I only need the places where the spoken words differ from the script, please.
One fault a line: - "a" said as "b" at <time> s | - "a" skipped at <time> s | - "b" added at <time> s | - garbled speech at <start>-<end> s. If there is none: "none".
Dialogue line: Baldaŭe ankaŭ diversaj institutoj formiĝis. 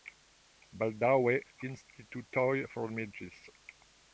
- "ankaŭ diversaj" skipped at 1.3 s